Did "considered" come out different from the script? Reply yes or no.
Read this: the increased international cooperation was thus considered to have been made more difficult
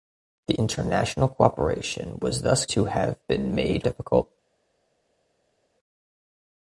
yes